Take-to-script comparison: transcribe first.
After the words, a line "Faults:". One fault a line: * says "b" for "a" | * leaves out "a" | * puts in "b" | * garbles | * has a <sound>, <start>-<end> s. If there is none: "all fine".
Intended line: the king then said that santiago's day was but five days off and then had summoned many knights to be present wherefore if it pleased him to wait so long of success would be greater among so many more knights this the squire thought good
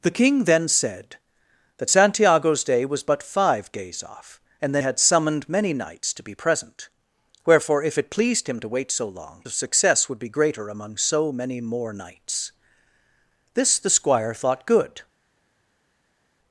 the king then said that santiago's day was but five days off and then had summoned many knights to be present wherefore if it pleased him to wait so long of success would be greater among so many more knights this the squire thought good
Faults:
all fine